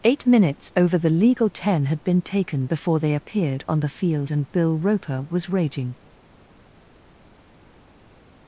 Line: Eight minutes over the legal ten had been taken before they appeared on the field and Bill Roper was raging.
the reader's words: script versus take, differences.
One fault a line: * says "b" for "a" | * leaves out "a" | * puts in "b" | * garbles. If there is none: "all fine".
all fine